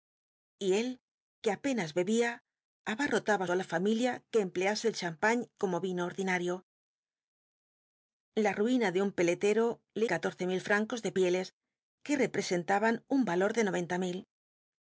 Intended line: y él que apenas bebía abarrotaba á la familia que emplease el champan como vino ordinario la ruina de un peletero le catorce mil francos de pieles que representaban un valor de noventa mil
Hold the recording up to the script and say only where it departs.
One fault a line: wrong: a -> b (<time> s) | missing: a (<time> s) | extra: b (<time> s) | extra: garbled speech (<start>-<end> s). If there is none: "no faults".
no faults